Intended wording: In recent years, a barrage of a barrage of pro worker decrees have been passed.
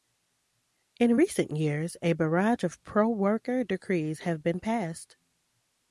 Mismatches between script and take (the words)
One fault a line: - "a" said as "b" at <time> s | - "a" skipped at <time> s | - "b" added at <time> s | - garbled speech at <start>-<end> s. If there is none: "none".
- "a barrage of" skipped at 2.8 s